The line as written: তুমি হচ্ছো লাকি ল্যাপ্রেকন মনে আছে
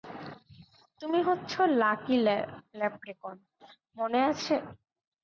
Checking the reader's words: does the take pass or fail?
pass